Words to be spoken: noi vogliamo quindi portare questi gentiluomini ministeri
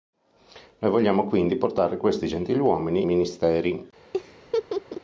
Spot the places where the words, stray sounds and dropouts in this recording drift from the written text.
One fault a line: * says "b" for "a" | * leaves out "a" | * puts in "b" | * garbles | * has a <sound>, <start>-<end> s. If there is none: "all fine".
* has a laugh, 4.1-5.0 s